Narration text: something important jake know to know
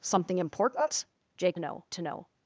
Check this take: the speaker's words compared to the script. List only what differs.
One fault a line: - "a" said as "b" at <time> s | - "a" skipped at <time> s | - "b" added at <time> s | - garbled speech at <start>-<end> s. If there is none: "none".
none